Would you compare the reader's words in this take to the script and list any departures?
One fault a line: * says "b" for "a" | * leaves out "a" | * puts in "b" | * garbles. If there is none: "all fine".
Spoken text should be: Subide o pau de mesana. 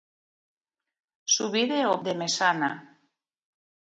* leaves out "pau"